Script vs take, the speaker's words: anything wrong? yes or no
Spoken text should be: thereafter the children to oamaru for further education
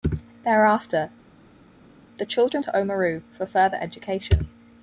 no